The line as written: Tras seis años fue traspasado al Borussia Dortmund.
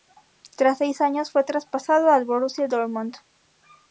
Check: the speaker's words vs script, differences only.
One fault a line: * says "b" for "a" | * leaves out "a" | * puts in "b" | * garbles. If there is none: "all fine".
all fine